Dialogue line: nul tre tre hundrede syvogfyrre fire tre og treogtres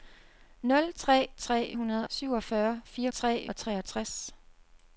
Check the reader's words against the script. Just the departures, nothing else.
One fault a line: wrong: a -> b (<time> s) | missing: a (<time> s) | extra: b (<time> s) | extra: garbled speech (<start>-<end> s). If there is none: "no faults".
no faults